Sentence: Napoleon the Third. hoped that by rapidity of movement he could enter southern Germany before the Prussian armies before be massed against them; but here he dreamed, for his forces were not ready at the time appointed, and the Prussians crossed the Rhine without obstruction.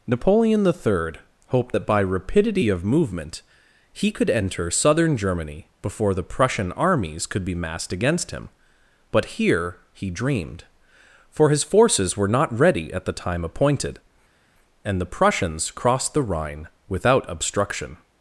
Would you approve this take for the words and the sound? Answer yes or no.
no